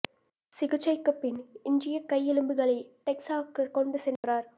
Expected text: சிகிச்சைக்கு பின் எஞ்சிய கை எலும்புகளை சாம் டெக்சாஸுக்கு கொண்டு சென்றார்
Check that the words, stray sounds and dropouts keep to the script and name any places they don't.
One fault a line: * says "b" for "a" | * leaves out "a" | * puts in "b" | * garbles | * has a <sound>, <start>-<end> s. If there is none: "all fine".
* leaves out "சாம்"
* has a dropout, 4.2-4.2 s